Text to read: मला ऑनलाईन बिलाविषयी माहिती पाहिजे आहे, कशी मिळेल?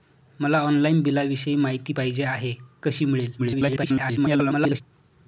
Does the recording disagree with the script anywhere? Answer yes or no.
yes